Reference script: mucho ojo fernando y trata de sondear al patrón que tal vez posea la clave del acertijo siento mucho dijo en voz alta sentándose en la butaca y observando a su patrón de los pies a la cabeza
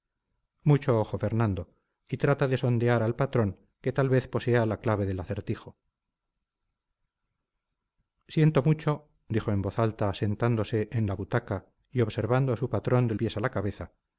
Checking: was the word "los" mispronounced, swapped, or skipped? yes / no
yes